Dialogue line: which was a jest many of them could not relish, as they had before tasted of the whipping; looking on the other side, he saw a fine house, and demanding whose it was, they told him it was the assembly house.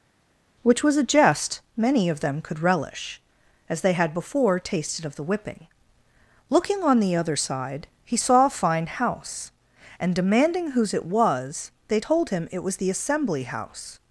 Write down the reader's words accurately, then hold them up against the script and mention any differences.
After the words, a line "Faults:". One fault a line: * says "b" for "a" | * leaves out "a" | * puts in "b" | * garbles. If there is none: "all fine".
which was a jest many of them could relish, as they had before tasted of the whipping; looking on the other side, he saw a fine house, and demanding whose it was, they told him it was the assembly house.
Faults:
* leaves out "not"